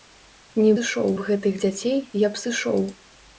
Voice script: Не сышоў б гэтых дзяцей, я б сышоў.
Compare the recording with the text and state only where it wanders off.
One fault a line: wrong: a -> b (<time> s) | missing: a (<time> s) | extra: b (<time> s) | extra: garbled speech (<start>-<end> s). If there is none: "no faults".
no faults